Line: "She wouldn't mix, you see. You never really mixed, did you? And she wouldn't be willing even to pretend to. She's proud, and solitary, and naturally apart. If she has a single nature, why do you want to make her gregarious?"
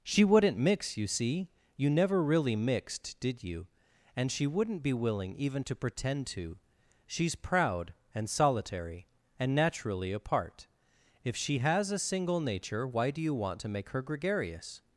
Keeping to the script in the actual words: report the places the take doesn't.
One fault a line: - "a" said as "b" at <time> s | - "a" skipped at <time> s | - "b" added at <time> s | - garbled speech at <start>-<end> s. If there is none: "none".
none